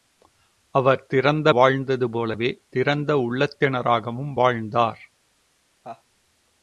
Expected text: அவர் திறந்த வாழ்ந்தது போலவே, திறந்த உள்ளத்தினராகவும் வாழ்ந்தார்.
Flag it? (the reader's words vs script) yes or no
no